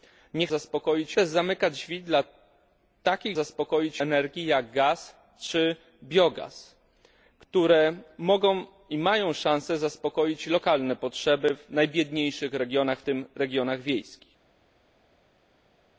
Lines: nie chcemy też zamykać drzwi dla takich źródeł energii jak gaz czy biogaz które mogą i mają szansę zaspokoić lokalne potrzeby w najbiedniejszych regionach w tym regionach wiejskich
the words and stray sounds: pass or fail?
fail